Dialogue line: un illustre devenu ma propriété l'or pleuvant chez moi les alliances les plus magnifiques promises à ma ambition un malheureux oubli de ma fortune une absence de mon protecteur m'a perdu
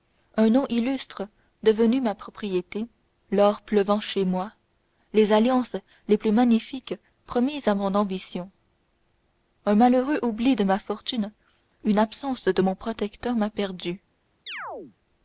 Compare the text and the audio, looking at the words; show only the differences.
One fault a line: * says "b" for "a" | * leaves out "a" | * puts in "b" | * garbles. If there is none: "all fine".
* puts in "nom"
* says "mon" for "ma"